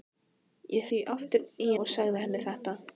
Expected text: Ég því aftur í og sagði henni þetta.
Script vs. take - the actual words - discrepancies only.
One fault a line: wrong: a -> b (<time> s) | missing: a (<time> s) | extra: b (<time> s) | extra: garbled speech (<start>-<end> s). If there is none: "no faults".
no faults